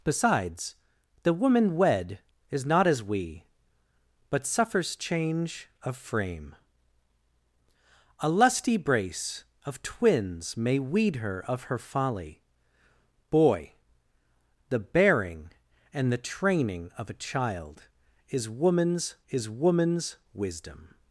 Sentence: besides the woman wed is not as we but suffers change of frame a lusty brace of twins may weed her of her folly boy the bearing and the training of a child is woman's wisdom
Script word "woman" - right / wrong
right